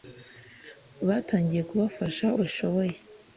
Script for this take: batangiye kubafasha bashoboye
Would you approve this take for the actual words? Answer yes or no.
yes